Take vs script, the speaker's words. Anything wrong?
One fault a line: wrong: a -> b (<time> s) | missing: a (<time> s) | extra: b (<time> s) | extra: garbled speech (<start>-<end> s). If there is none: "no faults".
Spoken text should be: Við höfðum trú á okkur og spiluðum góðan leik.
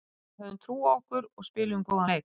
no faults